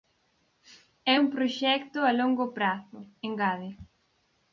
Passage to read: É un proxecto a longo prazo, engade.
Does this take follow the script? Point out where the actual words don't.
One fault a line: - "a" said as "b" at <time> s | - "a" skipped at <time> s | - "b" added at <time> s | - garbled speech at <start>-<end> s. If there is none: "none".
none